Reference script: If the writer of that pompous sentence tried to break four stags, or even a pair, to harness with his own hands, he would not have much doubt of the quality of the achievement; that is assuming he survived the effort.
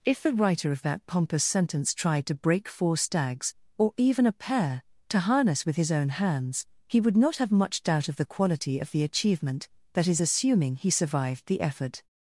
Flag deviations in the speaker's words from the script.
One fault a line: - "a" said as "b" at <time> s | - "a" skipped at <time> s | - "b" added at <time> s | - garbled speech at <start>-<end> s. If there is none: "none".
none